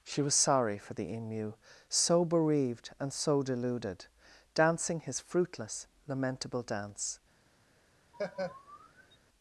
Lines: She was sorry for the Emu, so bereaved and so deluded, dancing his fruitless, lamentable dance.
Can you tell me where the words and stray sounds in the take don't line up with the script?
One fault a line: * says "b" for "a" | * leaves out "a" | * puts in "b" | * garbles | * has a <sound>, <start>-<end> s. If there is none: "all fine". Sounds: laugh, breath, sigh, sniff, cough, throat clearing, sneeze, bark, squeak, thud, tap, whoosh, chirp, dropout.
* has a laugh, 8.1-9.2 s